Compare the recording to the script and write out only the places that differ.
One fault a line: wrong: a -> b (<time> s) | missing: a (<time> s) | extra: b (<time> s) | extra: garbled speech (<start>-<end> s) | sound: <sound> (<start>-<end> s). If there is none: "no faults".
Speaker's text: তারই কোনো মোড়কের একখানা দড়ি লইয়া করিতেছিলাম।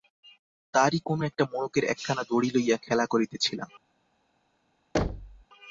extra: একটা (1.2 s)
extra: খেলা (2.8 s)
sound: thud (4.9-5.4 s)